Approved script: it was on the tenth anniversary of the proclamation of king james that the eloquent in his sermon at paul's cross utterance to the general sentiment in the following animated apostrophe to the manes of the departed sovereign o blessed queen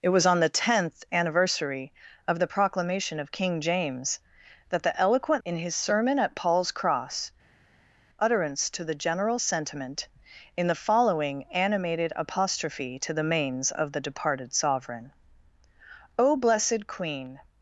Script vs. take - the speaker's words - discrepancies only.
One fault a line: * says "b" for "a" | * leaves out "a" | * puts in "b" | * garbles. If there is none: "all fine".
all fine